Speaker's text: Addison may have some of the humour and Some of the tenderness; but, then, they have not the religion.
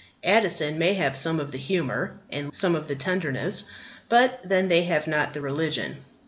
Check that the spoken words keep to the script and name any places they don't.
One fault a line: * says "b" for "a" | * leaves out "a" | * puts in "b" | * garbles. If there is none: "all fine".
all fine